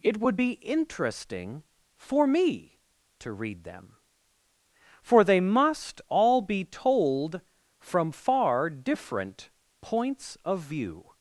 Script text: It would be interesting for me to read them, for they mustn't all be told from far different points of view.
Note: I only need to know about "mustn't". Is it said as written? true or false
false